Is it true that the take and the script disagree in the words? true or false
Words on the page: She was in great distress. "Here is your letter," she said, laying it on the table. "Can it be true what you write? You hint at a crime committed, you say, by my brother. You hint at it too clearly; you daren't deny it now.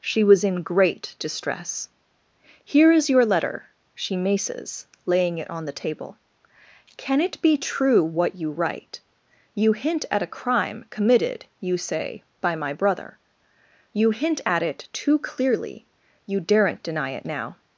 true